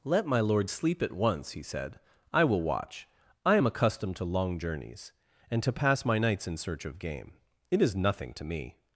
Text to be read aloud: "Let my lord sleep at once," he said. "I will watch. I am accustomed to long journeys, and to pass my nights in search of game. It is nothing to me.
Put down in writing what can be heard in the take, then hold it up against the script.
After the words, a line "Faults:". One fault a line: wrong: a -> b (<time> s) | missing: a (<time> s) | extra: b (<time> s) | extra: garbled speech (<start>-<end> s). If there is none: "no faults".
"Let my lord sleep at once," he said. "I will watch. I am accustomed to long journeys, and to pass my nights in search of game. It is nothing to me.
Faults:
no faults